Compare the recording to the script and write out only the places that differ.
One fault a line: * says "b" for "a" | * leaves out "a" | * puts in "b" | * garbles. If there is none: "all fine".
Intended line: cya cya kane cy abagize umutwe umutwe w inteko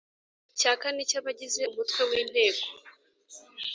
* leaves out "cya"
* leaves out "umutwe"